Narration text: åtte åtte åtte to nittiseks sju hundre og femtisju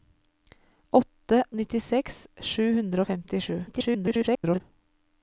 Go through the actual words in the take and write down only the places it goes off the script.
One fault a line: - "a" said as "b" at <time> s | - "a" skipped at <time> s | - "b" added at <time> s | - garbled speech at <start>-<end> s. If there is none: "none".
- "åtte åtte to" skipped at 1.4 s
- garbled speech at 3.7-4.6 s